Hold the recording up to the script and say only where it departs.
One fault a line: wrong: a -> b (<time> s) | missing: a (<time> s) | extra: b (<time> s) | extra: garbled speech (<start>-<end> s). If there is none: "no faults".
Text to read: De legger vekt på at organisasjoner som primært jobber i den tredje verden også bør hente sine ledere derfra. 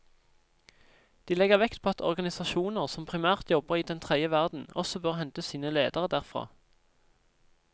no faults